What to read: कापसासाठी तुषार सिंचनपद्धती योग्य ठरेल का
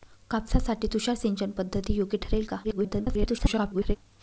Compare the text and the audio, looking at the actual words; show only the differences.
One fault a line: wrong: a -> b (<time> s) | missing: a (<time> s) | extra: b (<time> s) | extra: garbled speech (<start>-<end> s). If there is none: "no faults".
extra: garbled speech (2.6-4.0 s)